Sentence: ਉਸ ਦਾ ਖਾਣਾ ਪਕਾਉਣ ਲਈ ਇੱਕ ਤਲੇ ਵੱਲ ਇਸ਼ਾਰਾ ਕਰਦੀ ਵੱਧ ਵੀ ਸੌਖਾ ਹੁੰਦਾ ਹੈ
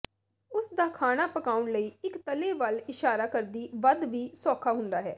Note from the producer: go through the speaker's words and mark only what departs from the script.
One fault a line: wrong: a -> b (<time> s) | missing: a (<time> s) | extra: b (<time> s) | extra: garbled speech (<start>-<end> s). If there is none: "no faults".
no faults